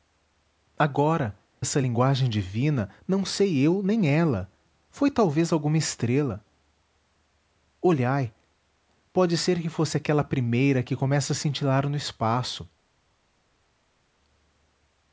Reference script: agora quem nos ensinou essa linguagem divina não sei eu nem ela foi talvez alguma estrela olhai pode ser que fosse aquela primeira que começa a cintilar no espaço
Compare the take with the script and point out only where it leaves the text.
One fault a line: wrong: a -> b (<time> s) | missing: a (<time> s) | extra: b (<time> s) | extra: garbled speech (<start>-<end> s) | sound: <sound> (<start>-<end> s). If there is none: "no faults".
missing: quem nos ensinou (1.4 s)